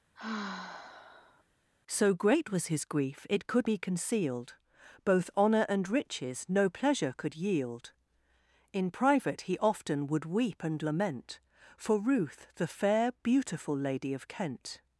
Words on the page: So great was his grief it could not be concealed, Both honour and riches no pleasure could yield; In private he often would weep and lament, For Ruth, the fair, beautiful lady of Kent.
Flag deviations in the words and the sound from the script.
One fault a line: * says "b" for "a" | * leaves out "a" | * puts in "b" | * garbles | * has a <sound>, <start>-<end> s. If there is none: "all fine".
* has a sigh, 0.1-1.4 s
* leaves out "not"